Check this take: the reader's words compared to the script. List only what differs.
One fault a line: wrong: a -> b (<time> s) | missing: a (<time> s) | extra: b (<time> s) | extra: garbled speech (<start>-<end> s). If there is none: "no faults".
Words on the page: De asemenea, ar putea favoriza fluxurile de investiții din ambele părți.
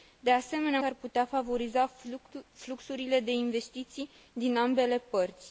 no faults